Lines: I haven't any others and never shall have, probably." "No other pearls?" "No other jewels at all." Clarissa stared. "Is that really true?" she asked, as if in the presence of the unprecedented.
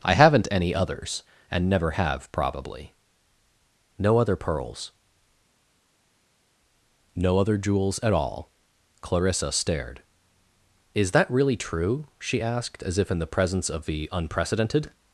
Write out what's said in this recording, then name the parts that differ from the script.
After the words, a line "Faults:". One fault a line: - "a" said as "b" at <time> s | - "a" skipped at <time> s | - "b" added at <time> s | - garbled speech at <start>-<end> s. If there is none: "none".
I haven't any others and never have, probably." "No other pearls?" "No other jewels at all." Clarissa stared. "Is that really true?" she asked, as if in the presence of the unprecedented.
Faults:
- "shall" skipped at 1.9 s